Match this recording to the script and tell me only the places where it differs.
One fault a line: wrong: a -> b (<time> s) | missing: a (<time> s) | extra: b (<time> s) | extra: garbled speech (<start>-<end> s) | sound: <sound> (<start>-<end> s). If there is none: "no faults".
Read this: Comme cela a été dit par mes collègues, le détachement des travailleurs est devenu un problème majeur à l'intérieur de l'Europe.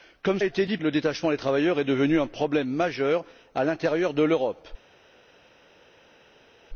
missing: cela (0.4 s)
missing: par mes collègues (0.8 s)